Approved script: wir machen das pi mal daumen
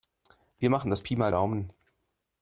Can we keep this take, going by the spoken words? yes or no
yes